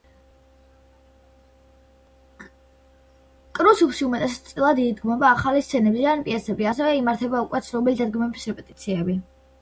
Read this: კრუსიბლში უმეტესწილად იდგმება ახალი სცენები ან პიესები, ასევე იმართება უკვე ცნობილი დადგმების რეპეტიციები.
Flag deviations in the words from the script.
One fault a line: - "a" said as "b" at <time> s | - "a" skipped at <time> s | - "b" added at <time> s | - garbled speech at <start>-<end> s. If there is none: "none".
none